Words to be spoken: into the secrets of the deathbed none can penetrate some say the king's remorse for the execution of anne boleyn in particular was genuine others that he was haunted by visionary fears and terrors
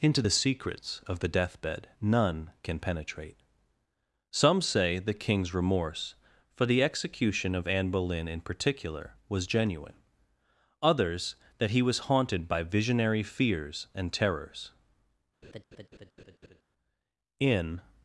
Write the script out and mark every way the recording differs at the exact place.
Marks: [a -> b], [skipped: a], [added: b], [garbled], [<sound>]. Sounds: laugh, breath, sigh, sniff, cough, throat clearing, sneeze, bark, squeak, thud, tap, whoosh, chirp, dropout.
into the secrets of the deathbed none can penetrate some say the king's remorse for the execution of anne boleyn in particular was genuine others that he was haunted by visionary fears and terrors [laugh] [added: in]